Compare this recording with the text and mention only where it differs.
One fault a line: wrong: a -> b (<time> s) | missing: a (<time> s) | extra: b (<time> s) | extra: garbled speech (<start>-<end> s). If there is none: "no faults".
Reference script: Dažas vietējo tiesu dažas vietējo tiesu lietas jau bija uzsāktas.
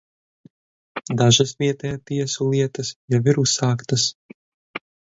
missing: dažas vietējo tiesu (2.5 s)
wrong: bija -> ir (3.4 s)